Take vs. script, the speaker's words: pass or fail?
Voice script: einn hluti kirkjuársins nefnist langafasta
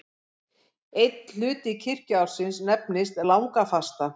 pass